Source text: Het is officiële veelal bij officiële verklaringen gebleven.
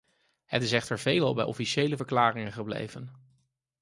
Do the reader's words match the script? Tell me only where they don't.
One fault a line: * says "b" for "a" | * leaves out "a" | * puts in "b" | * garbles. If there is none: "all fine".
* says "echter" for "officiële"